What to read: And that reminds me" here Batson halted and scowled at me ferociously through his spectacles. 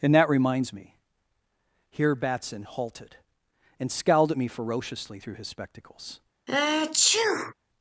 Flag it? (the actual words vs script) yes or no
no